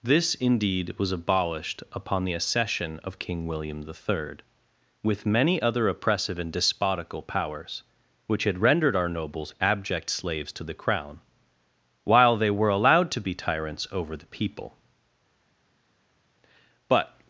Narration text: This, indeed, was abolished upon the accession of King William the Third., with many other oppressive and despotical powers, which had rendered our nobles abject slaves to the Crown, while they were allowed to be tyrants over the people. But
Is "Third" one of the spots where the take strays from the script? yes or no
no